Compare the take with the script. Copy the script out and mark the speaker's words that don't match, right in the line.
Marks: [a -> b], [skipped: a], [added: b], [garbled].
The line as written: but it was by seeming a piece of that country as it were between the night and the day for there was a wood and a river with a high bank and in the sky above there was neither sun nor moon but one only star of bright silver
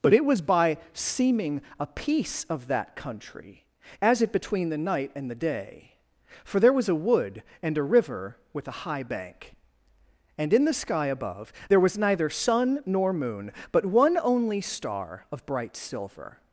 but it was by seeming a piece of that country as it [skipped: were] between the night and the day for there was a wood and a river with a high bank and in the sky above there was neither sun nor moon but one only star of bright silver